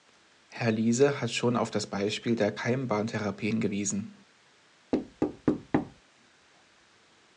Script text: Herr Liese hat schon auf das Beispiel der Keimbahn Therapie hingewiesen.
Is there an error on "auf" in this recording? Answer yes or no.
no